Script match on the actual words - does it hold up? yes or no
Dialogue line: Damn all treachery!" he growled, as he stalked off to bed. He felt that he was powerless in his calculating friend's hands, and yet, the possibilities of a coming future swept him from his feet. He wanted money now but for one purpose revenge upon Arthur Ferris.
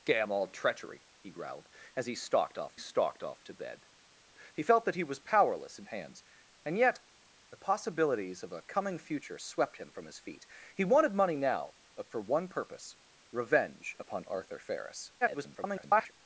no